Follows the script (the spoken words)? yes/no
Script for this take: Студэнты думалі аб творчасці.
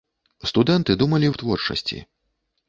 yes